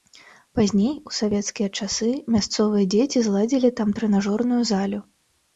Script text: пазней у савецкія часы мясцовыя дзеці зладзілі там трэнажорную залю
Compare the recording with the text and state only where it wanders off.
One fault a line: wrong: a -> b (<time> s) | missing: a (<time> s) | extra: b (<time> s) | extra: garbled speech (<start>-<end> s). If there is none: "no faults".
no faults